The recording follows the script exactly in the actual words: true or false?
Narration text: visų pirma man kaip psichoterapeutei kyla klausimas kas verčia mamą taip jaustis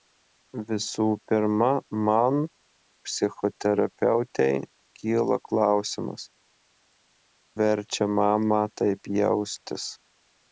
false